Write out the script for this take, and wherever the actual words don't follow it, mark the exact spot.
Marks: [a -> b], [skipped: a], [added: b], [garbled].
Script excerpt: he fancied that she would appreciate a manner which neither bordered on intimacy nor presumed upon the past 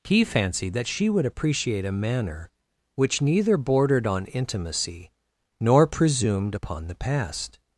he fancied that she would appreciate a manner which neither bordered on intimacy nor presumed upon the past